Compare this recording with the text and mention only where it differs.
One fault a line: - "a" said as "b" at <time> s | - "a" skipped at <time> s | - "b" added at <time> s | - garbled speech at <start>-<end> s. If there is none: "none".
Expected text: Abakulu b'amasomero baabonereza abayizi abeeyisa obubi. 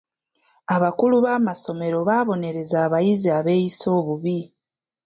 none